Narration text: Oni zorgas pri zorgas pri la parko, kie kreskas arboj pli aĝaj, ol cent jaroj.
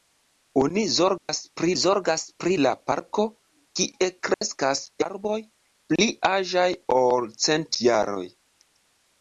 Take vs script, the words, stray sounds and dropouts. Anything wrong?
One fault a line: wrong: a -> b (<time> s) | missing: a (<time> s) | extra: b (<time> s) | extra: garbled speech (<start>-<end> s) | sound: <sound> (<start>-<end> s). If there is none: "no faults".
sound: dropout (1.2-1.3 s)
sound: dropout (4.3-4.4 s)